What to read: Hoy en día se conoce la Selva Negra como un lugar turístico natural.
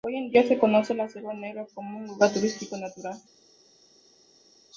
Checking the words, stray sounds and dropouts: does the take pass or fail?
pass